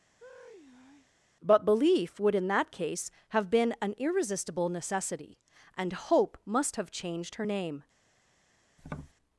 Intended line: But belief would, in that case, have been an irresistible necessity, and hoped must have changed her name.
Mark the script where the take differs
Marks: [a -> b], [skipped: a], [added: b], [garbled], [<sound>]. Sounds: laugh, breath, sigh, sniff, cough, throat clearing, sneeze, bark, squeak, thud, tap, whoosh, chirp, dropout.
[sigh] But belief would, in that case, have been an irresistible necessity, and [hoped -> hope] must have changed her name. [tap]